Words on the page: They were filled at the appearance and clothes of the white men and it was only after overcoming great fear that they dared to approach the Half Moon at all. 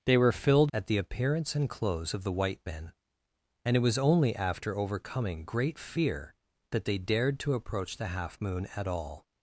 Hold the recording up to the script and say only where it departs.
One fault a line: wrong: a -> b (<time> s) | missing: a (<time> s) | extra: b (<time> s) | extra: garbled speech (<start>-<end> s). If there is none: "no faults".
no faults